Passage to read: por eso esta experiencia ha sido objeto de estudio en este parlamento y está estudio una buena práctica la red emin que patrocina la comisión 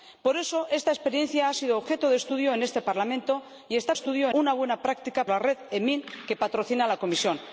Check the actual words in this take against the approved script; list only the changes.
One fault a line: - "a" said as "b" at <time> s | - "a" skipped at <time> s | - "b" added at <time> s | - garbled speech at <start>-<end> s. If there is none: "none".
none